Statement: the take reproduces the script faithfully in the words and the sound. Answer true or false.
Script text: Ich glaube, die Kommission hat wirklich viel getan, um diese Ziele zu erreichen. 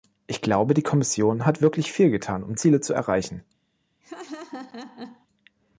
false